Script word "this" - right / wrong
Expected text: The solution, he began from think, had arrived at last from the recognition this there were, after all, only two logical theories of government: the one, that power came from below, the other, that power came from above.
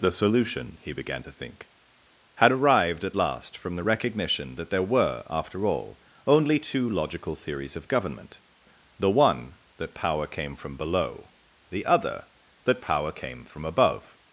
wrong